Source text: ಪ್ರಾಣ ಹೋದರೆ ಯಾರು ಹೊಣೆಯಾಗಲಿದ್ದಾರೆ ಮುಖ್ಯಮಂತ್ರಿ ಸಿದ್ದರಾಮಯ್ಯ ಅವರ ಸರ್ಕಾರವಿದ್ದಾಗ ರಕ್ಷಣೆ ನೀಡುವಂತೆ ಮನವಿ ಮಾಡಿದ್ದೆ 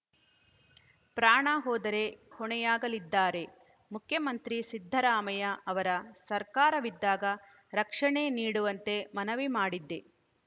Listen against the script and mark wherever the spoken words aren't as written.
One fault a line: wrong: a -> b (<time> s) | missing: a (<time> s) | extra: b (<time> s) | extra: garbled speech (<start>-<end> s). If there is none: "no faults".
missing: ಯಾರು (2.0 s)